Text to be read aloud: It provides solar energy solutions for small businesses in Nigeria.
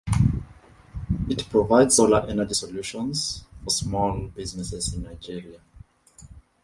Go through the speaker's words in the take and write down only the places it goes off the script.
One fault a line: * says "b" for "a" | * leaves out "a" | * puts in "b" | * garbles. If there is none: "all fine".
all fine